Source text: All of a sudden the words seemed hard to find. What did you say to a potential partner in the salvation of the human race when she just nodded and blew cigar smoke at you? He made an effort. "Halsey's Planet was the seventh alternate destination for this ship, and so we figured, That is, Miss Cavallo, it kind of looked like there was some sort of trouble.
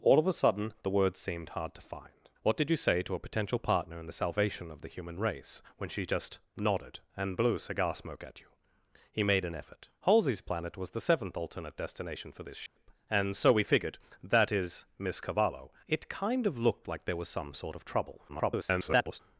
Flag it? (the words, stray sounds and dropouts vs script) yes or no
yes